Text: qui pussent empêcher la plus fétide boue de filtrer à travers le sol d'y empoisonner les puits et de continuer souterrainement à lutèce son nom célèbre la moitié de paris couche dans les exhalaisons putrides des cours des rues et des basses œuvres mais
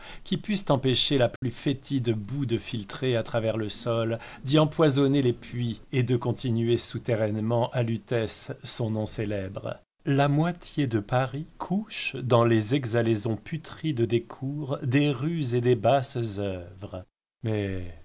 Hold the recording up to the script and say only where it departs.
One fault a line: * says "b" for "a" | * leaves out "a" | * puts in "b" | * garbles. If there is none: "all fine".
all fine